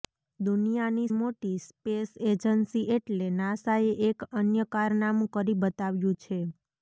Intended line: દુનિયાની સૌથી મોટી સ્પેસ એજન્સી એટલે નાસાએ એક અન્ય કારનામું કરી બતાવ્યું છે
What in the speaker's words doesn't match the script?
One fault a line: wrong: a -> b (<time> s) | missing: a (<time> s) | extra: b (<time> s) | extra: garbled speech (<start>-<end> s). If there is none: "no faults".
missing: સૌથી (1.1 s)